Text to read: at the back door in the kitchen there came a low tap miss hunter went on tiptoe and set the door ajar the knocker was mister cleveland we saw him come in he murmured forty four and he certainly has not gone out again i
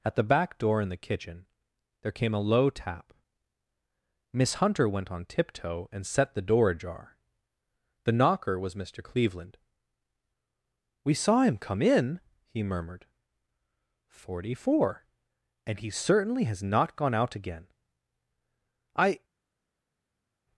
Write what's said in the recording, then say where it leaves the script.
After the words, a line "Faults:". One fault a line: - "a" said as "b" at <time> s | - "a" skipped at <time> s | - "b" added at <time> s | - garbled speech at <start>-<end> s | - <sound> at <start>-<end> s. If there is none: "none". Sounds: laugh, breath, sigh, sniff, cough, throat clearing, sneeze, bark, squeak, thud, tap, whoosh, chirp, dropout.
at the back door in the kitchen there came a low tap miss hunter went on tiptoe and set the door ajar the knocker was mister cleveland we saw him come in he murmured forty four and he certainly has not gone out again i
Faults:
none